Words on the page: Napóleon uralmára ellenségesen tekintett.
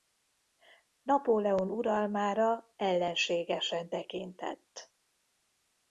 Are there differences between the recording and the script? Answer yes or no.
no